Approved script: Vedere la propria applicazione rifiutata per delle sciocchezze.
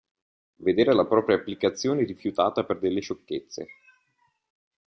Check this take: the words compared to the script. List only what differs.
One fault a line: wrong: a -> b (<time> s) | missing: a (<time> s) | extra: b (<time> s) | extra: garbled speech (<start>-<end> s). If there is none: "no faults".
no faults